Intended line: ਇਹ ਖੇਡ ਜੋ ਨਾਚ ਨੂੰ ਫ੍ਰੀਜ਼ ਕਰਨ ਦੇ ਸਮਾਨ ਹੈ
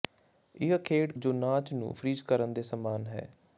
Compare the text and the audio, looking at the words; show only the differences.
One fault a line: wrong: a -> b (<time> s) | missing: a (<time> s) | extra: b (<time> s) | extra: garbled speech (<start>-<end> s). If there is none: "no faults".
no faults